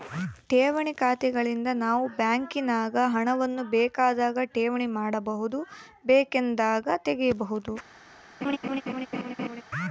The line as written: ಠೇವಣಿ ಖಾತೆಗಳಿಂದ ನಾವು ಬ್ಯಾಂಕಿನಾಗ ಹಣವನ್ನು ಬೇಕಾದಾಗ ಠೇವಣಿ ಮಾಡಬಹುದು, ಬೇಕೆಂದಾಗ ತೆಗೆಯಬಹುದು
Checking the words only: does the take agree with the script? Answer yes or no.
yes